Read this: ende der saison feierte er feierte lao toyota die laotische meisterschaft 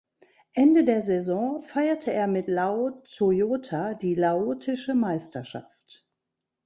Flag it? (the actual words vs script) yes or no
yes